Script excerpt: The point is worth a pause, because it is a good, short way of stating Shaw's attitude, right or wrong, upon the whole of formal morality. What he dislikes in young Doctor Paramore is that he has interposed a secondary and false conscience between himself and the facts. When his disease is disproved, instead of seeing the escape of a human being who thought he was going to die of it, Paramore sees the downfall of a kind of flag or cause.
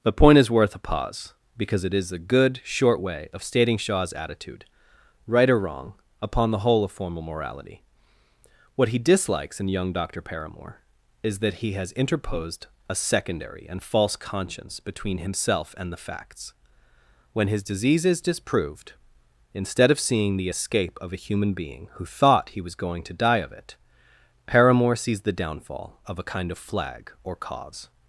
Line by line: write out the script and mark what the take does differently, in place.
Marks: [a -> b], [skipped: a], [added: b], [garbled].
The point is worth a pause, because it is a good, short way of stating Shaw's attitude, right or wrong, upon the whole of formal morality. What he dislikes in young Doctor Paramore is that he has interposed a secondary and false conscience between himself and the facts. When his disease is disproved, instead of seeing the escape of a human being who thought he was going to die of it, Paramore sees the downfall of a kind of flag or cause.